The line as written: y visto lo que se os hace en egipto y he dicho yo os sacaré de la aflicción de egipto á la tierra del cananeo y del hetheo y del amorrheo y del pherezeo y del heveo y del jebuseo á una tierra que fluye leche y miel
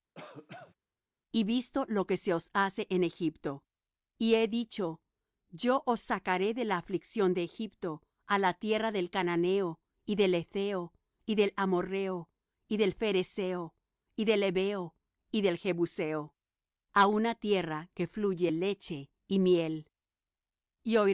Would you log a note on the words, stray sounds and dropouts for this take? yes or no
yes